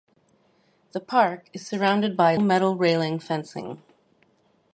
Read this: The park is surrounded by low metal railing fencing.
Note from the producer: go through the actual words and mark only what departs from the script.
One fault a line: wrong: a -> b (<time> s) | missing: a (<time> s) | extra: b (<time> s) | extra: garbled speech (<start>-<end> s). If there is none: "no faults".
missing: low (2.3 s)